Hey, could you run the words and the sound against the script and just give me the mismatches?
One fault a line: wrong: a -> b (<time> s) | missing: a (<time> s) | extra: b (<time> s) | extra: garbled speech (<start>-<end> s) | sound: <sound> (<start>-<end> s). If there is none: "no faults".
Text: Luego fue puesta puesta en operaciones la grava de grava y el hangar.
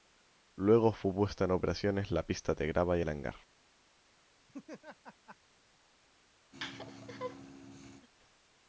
missing: puesta (1.4 s)
wrong: grava -> pista (2.3 s)
sound: laugh (4.5-5.4 s)
sound: laugh (6.5-8.1 s)